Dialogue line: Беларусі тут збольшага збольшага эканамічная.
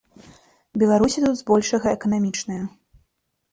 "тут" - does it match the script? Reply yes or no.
yes